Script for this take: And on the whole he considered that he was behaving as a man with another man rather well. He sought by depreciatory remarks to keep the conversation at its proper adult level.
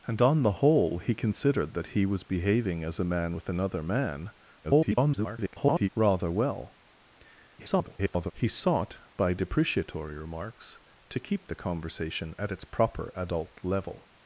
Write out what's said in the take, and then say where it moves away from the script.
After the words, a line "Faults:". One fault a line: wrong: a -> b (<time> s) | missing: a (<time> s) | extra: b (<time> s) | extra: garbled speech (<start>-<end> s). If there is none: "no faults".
And on the whole he considered that he was behaving as a man with another man [garbled] rather well. [garbled] He sought by depreciatory remarks to keep the conversation at its proper adult level.
Faults:
extra: garbled speech (4.6-5.9 s)
extra: garbled speech (7.6-8.3 s)